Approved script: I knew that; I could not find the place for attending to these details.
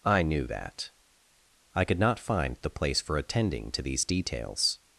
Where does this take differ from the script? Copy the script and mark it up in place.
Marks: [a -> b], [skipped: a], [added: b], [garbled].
I knew that; I could not find the place for attending to these details.